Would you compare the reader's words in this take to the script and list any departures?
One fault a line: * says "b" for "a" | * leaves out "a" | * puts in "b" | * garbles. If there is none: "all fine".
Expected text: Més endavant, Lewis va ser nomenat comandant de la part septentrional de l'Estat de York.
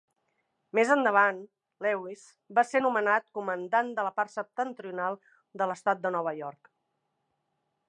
* puts in "Nova"